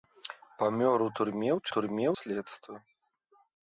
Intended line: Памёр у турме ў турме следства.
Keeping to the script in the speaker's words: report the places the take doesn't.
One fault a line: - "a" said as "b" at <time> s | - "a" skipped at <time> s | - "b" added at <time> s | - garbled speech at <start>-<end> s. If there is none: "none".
none